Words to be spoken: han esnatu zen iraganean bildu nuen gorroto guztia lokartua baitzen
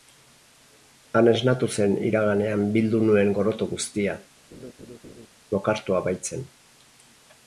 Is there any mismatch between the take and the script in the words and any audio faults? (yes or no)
yes